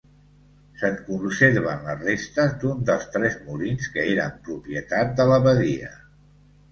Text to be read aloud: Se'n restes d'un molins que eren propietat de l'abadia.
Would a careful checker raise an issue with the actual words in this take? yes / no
yes